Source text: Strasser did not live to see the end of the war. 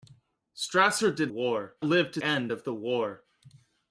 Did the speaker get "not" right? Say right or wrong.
wrong